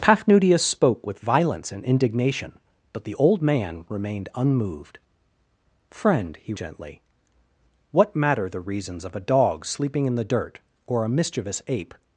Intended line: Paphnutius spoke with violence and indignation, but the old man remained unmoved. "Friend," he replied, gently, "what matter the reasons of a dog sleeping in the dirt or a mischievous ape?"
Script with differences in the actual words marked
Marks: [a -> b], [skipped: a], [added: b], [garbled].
Paphnutius spoke with violence and indignation, but the old man remained unmoved. "Friend," he [skipped: replied,] gently, "what matter the reasons of a dog sleeping in the dirt or a mischievous ape?"